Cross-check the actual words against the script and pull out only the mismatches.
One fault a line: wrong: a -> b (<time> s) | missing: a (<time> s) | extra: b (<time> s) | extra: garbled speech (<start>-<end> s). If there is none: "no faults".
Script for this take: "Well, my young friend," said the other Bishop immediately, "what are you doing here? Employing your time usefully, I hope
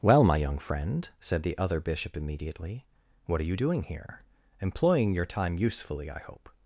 no faults